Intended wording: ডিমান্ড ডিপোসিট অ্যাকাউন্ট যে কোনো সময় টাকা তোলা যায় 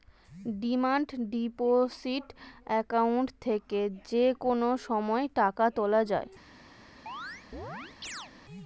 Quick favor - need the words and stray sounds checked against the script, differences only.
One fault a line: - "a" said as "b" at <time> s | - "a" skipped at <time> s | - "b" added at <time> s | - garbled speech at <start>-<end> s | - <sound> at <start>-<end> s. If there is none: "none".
- "থেকে" added at 3.4 s
- chirp at 7.1-8.3 s